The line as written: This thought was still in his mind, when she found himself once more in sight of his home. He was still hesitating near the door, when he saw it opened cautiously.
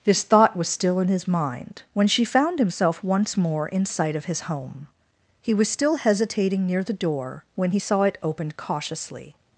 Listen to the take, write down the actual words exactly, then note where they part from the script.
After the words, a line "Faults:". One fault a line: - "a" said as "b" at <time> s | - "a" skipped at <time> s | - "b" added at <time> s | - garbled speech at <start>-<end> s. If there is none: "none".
This thought was still in his mind, when she found himself once more in sight of his home. He was still hesitating near the door, when he saw it opened cautiously.
Faults:
none